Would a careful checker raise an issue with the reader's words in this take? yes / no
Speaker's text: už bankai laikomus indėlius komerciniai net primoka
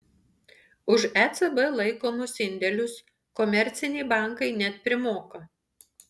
yes